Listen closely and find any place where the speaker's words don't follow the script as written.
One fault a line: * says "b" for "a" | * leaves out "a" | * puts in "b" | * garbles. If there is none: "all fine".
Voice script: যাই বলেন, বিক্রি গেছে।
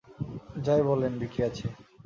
all fine